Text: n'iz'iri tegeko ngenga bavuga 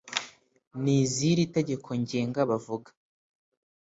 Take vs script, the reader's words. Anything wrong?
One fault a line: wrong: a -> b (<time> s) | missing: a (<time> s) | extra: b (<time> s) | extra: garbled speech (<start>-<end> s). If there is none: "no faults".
no faults